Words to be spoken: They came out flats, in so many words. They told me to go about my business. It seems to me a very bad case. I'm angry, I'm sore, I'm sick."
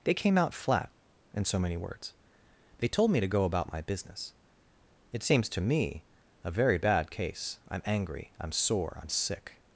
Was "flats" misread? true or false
true